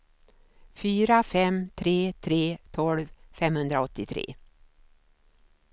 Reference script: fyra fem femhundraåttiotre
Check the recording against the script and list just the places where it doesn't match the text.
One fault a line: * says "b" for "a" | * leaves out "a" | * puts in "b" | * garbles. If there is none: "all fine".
* puts in "tre tre tolv"